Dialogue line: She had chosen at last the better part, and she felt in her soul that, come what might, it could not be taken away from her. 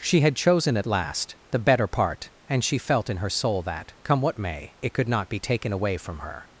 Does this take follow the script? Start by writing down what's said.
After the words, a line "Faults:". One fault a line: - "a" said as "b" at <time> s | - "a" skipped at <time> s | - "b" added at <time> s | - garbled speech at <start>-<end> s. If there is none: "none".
She had chosen at last the better part, and she felt in her soul that, come what may, it could not be taken away from her.
Faults:
- "might" said as "may" at 4.4 s